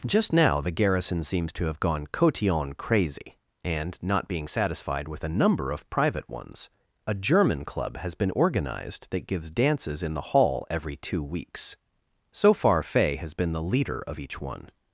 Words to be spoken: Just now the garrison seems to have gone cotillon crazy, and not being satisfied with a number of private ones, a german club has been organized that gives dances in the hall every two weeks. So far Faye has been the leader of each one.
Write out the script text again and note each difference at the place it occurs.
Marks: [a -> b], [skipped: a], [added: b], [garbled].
Just now the garrison seems to have gone cotillon crazy, and not being satisfied with a number of private ones, a german club has been organized that gives dances in the hall every two weeks. So far Faye has been the leader of each one.